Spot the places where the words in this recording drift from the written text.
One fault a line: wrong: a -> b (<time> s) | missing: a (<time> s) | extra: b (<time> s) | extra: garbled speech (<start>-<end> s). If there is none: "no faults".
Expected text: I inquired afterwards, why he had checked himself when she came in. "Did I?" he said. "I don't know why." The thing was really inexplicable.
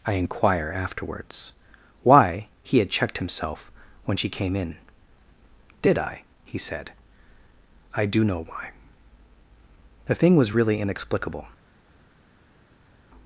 wrong: inquired -> inquire (0.1 s)
wrong: don't -> do (8.0 s)